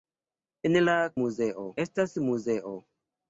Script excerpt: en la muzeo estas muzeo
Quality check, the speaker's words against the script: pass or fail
pass